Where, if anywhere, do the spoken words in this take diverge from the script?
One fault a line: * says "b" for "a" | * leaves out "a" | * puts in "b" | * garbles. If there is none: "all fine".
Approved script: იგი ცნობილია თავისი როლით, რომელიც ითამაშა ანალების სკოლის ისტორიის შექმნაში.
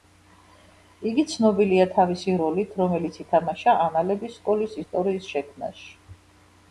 all fine